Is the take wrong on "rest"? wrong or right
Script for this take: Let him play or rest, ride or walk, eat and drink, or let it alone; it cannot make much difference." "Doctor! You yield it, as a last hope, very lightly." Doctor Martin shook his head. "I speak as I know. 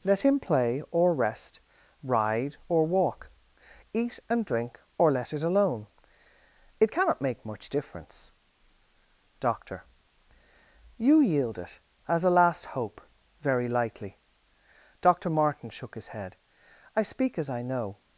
right